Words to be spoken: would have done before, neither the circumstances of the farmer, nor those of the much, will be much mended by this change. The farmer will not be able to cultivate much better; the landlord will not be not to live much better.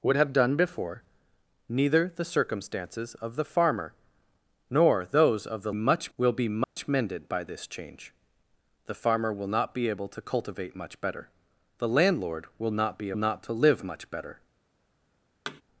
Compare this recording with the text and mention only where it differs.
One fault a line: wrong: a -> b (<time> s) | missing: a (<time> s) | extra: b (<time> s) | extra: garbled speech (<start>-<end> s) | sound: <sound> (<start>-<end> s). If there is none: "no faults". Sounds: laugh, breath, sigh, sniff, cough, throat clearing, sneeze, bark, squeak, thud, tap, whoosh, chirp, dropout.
sound: dropout (6.6-6.8 s)
sound: thud (15.5-15.6 s)